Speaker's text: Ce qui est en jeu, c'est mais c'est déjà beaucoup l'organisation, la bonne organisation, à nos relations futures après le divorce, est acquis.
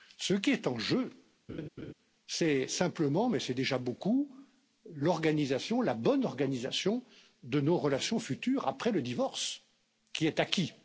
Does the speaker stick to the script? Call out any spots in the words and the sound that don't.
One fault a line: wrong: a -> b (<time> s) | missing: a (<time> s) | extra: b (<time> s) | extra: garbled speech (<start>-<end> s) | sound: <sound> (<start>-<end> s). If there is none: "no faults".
sound: laugh (1.5-1.9 s)
extra: simplement (2.7 s)
wrong: à -> de (7.4 s)
extra: qui (10.1 s)